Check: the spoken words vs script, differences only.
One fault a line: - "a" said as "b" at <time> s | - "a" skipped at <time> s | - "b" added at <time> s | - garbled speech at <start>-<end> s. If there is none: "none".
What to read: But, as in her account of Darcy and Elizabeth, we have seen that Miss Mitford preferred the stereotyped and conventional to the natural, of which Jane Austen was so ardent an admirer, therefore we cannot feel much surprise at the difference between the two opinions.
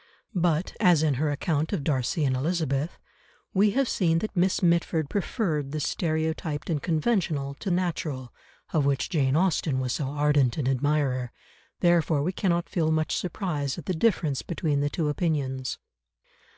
- "the" skipped at 7.7 s